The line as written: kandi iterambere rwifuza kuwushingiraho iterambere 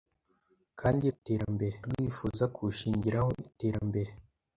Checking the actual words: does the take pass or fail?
pass